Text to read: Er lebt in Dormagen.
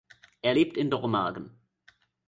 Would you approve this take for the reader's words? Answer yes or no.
yes